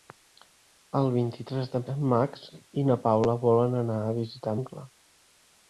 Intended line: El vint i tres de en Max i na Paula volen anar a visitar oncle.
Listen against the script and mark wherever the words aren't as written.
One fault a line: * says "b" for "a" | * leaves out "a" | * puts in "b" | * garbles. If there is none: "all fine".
all fine